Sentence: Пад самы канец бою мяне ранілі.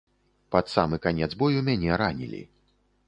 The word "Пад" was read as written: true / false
true